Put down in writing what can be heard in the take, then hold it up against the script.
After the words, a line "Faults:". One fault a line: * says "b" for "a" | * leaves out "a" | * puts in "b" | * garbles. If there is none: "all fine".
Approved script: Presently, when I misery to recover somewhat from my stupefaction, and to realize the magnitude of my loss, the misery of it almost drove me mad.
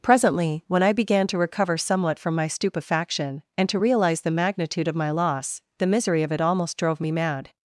Presently, when I began to recover somewhat from my stupefaction, and to realize the magnitude of my loss, the misery of it almost drove me mad.
Faults:
* says "began" for "misery"